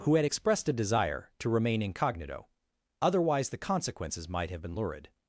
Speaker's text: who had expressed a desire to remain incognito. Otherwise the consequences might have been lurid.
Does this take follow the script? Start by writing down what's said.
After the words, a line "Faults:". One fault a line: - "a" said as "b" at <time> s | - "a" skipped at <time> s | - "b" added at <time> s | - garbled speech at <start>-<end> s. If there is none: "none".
who had expressed a desire to remain incognito. Otherwise the consequences might have been lurid.
Faults:
none